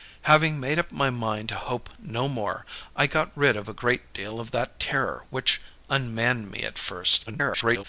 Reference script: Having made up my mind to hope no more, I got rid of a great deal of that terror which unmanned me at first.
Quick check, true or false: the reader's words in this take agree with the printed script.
false